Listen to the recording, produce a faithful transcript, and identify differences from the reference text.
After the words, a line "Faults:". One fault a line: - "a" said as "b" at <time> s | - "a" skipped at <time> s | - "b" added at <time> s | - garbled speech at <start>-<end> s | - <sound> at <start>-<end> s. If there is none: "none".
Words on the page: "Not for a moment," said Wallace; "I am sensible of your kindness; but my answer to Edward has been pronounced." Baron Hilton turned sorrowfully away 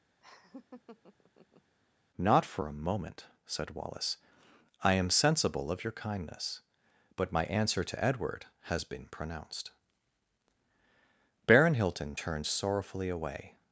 "Not for a moment," said Wallace; "I am sensible of your kindness; but my answer to Edward has been pronounced." Baron Hilton turned sorrowfully away
Faults:
- laugh at 0.2-1.7 s